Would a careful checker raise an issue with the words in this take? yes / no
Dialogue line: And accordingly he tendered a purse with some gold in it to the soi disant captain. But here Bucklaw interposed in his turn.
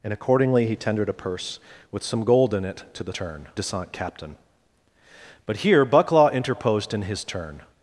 yes